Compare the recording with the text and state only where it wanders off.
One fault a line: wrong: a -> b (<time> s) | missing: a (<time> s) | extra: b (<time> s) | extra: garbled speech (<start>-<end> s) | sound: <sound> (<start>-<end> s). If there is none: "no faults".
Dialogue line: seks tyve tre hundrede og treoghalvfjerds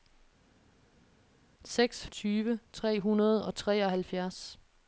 no faults